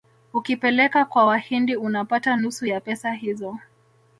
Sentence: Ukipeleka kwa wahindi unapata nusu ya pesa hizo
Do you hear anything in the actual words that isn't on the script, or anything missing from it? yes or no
no